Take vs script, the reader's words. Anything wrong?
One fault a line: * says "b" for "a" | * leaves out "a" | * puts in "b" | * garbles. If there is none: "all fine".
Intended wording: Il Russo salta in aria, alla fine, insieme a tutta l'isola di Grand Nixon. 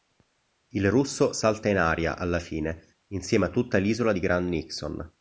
all fine